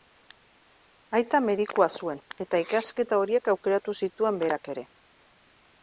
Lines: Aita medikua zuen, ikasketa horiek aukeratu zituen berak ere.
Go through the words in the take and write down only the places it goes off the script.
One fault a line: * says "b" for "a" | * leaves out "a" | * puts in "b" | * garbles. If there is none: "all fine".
* puts in "eta"